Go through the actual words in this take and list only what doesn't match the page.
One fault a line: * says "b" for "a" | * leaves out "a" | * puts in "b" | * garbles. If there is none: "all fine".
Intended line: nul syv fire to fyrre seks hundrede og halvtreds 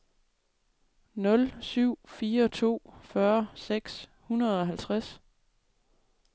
all fine